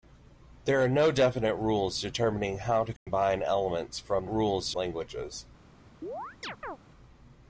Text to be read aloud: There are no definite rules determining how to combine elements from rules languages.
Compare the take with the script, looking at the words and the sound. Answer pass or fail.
fail